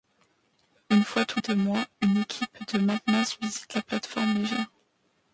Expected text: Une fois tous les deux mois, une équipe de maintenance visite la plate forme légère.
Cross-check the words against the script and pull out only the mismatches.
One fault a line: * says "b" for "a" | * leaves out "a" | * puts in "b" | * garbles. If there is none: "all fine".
* leaves out "les"